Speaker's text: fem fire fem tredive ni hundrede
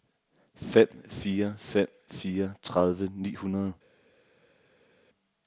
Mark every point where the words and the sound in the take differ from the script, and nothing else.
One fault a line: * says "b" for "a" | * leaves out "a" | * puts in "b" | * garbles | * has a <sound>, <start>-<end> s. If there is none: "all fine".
* puts in "fire"